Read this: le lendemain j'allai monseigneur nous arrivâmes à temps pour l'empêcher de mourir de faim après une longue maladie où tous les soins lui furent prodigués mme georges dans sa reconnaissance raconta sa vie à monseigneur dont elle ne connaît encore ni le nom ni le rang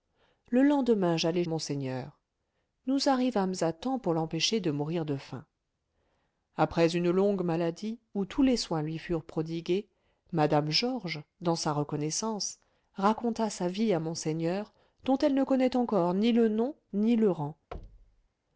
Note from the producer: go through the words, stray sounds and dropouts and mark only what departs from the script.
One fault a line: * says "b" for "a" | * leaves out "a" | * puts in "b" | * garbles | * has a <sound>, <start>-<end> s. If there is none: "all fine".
* has a thud, 17.7-18.3 s